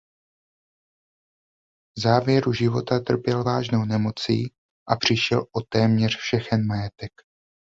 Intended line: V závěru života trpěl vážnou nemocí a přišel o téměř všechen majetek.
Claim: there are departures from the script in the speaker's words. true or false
false